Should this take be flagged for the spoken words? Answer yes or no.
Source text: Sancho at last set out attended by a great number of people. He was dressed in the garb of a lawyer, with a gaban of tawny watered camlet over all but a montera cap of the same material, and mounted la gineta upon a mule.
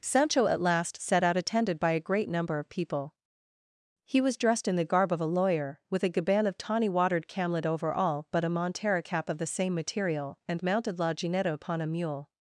no